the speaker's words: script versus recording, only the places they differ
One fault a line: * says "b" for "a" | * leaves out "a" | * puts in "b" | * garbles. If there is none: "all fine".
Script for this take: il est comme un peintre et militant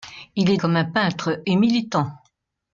all fine